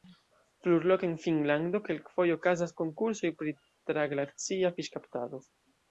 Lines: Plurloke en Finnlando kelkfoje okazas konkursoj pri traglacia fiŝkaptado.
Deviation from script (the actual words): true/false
false